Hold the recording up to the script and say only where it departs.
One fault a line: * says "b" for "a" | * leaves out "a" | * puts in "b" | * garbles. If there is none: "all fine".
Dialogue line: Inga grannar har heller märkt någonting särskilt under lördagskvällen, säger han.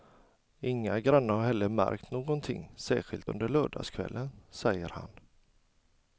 all fine